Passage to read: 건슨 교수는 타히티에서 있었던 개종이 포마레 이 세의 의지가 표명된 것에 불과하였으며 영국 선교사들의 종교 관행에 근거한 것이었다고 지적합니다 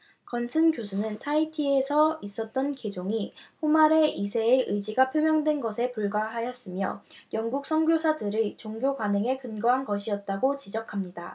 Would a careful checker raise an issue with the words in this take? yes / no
no